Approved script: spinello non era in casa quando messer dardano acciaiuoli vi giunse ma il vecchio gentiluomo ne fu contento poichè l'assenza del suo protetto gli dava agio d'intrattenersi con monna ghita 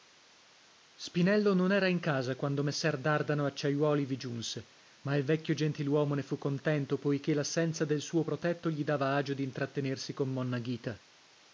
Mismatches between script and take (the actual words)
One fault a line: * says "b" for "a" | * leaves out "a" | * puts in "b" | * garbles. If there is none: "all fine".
all fine